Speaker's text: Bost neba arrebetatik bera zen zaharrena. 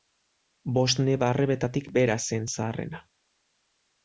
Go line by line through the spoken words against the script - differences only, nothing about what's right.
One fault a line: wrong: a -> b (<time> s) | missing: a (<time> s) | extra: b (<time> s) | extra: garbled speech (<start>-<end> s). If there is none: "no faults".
no faults